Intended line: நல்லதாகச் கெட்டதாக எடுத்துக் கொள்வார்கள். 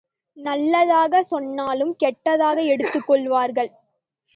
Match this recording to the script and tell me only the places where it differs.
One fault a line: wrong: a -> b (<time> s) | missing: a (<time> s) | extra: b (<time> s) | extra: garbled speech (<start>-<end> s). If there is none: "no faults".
extra: சொன்னாலும் (1.3 s)